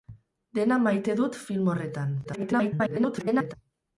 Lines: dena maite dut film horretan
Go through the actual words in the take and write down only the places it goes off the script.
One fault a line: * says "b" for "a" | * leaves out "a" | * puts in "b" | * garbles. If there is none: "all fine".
* garbles